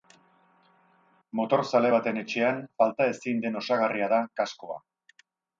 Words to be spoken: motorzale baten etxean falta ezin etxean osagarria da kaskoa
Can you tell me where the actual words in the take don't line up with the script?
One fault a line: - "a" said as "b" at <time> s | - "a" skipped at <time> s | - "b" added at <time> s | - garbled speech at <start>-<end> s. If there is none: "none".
- "etxean" said as "den" at 3.5 s